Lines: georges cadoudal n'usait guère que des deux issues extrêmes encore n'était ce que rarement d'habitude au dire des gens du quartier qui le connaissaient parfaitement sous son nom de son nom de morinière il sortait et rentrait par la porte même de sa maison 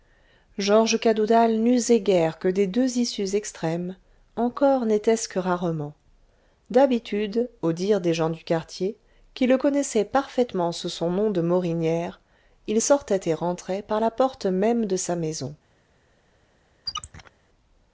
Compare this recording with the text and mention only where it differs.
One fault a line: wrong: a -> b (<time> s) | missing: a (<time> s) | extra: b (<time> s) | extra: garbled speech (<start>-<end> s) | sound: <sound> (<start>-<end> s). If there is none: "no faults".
missing: son nom de (11.4 s)
sound: squeak (16.9-17.3 s)